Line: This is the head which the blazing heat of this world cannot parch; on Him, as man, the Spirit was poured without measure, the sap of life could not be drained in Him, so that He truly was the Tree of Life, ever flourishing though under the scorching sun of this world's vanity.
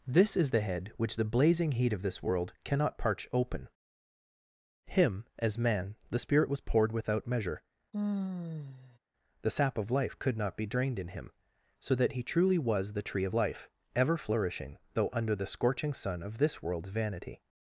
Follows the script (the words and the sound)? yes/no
no